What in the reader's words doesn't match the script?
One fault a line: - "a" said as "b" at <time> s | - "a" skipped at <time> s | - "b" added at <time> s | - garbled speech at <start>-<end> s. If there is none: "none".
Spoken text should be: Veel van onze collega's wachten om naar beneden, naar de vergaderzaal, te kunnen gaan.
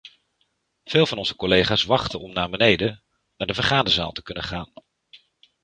none